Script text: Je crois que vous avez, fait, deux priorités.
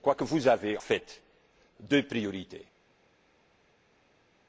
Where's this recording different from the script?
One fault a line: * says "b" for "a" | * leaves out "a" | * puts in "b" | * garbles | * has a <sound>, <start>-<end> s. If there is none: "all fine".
all fine